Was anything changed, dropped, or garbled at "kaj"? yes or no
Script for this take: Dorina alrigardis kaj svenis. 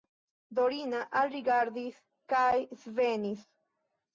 no